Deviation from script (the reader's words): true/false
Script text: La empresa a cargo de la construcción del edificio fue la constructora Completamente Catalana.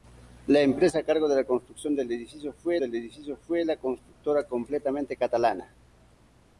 true